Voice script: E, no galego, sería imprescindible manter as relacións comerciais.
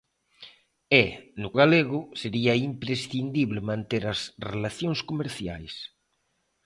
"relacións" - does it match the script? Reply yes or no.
yes